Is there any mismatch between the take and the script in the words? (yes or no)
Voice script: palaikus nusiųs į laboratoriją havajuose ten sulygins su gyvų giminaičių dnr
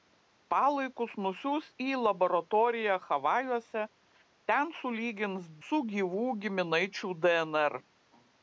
no